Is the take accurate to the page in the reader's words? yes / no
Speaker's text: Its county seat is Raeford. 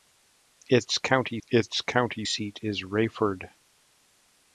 no